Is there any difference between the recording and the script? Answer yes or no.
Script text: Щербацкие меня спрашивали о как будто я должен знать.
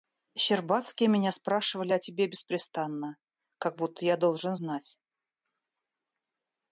yes